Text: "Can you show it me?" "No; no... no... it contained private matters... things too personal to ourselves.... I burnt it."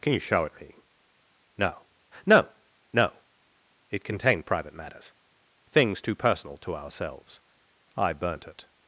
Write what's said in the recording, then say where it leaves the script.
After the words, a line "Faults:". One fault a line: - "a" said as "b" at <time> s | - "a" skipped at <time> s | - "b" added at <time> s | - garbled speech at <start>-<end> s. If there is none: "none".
"Can you show it me?" "No; no... no... it contained private matters... things too personal to ourselves.... I burnt it."
Faults:
none